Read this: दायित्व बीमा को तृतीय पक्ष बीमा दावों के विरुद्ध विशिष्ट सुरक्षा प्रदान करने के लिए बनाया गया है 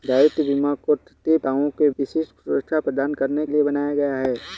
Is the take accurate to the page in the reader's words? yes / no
no